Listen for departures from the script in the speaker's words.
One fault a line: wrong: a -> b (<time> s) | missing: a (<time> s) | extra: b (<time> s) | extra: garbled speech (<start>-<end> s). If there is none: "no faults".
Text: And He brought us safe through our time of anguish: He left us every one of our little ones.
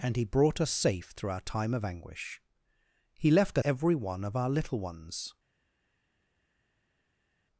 missing: us (3.6 s)